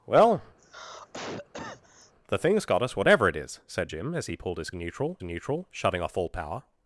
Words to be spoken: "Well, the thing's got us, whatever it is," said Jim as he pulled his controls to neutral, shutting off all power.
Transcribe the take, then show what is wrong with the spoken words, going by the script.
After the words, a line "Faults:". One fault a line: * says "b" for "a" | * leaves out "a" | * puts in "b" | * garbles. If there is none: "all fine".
"Well, the thing's got us, whatever it is," said Jim as he pulled his neutral to neutral, shutting off all power.
Faults:
* says "neutral" for "controls"